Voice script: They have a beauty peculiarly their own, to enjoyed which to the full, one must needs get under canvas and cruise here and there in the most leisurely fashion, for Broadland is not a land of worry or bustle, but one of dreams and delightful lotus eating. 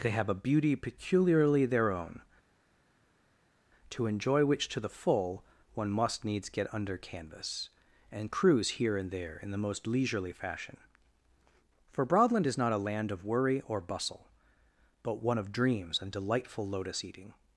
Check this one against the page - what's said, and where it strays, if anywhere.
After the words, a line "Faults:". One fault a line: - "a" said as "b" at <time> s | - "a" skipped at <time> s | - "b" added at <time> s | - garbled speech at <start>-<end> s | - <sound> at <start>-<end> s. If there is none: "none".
They have a beauty peculiarly their own, to enjoy which to the full, one must needs get under canvas and cruise here and there in the most leisurely fashion, for Broadland is not a land of worry or bustle, but one of dreams and delightful lotus eating.
Faults:
- "enjoyed" said as "enjoy" at 4.0 s